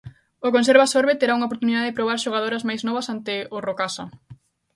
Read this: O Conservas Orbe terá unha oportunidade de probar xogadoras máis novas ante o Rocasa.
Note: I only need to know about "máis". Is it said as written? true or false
true